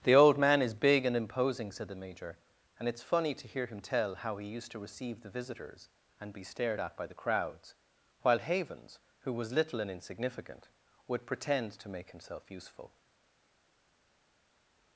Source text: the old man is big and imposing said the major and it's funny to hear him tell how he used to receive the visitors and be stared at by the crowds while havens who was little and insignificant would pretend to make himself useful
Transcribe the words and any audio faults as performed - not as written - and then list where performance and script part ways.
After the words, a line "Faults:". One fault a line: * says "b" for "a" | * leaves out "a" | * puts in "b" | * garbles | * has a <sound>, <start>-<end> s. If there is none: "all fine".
the old man is big and imposing said the major and it's funny to hear him tell how he used to receive the visitors and be stared at by the crowds while havens who was little and insignificant would pretend to make himself useful
Faults:
all fine